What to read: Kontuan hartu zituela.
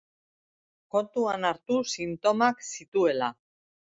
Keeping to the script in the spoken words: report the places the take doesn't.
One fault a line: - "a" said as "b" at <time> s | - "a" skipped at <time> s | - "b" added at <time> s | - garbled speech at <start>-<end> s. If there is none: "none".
- "sintomak" added at 2.0 s